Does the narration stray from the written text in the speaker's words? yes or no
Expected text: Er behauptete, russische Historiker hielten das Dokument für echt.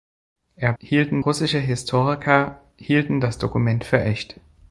yes